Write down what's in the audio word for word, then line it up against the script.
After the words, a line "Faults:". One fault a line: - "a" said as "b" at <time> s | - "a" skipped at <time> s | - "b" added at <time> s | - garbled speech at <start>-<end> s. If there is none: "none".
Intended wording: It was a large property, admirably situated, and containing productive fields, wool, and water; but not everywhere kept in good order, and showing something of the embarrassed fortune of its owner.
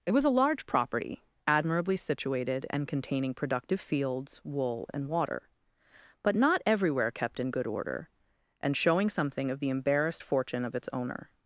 It was a large property, admirably situated, and containing productive fields, wool, and water; but not everywhere kept in good order, and showing something of the embarrassed fortune of its owner.
Faults:
none